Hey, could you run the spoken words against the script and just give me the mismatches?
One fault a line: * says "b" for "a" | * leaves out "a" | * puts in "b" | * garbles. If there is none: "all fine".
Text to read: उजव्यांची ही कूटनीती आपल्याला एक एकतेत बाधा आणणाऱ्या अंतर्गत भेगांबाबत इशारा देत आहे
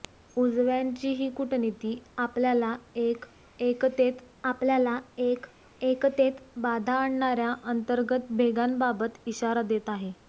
* puts in "आपल्याला एक एकतेत"